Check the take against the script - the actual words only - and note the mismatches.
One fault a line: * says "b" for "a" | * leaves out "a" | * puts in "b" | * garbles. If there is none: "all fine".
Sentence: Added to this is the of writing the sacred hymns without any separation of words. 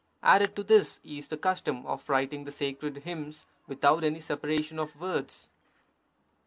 * puts in "custom"